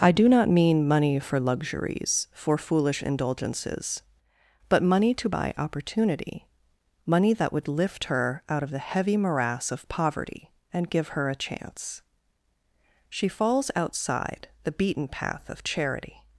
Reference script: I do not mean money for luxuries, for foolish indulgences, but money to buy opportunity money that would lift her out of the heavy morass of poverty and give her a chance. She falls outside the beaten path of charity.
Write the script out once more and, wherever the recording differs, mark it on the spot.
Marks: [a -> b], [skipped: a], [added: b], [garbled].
I do not mean money for luxuries, for foolish indulgences, but money to buy opportunity money that would lift her out of the heavy morass of poverty and give her a chance. She falls outside the beaten path of charity.